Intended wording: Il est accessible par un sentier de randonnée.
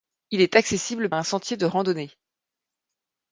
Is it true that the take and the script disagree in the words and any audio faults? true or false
true